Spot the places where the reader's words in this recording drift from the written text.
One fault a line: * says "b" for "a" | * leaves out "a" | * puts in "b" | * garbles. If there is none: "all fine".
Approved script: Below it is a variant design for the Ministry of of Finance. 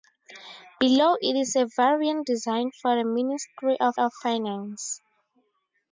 all fine